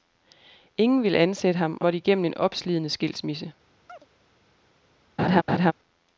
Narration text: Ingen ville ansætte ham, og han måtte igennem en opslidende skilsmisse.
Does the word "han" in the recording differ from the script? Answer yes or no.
yes